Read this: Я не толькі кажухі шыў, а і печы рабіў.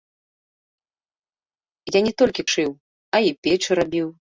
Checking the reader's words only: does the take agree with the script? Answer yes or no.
no